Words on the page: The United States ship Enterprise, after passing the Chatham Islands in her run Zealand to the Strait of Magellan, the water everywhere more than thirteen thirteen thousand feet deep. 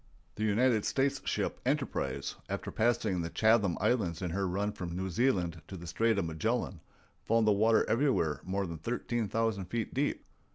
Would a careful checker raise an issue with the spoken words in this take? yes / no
yes